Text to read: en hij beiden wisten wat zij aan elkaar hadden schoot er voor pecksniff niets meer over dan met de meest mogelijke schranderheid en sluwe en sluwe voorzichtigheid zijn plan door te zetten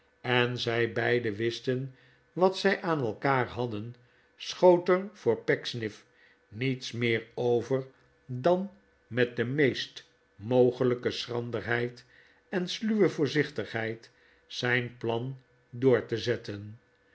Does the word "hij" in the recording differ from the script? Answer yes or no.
yes